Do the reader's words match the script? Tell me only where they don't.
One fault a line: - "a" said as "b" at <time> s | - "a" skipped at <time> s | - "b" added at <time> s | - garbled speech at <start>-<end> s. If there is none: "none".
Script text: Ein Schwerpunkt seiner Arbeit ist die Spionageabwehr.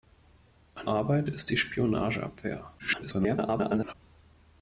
- "Schwerpunkt seiner" skipped at 0.9 s
- garbled speech at 2.8-3.9 s